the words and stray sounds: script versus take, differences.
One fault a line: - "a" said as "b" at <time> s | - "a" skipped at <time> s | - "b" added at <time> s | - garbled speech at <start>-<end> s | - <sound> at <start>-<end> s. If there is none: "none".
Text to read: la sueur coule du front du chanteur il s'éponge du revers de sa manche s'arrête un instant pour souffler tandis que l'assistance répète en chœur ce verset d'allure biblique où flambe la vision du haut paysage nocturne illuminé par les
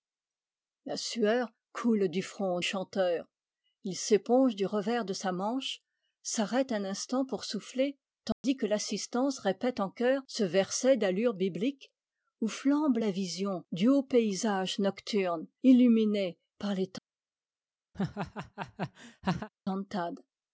- "du" skipped at 2.6 s
- dropout at 8.3-8.4 s
- laugh at 17.9-19.5 s